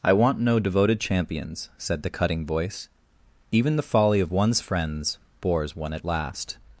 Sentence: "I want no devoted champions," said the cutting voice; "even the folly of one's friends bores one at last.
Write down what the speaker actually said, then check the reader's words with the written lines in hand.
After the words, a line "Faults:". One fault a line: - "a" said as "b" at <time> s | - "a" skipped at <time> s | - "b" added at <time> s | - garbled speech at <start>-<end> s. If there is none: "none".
"I want no devoted champions," said the cutting voice; "even the folly of one's friends bores one at last.
Faults:
none